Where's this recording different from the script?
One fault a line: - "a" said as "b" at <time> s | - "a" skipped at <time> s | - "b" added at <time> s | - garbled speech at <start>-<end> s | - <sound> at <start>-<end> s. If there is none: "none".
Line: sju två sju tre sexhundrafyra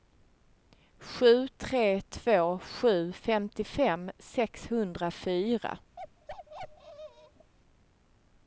- "tre" added at 1.5 s
- "tre" said as "femtiofem" at 3.1 s
- bark at 6.0-7.5 s